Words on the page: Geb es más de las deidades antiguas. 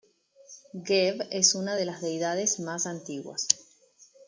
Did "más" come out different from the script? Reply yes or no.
yes